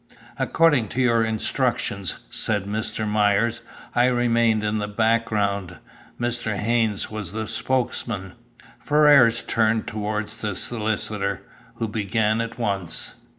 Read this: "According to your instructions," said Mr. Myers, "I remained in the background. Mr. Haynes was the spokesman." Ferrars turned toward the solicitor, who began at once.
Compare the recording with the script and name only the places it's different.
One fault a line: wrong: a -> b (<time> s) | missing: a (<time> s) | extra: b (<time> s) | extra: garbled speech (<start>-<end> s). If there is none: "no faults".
no faults